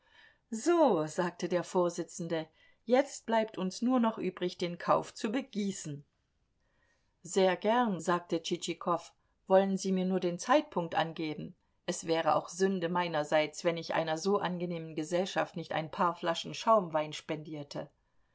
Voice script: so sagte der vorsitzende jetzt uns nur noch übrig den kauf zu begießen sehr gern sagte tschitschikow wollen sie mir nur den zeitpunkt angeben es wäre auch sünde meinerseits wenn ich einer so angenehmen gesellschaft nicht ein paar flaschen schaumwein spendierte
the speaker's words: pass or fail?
fail